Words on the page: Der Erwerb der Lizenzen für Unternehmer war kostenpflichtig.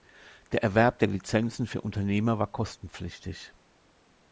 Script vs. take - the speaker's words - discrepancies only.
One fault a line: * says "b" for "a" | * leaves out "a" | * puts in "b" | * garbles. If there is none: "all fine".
all fine